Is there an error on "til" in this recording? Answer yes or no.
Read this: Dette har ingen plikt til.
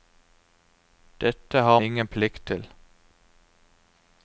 no